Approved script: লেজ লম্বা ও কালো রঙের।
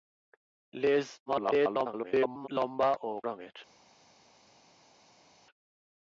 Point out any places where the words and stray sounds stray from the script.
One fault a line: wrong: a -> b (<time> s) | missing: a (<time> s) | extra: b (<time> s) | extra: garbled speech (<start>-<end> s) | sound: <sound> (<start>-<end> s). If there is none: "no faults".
extra: garbled speech (1.3-2.5 s)
missing: কালো (3.1 s)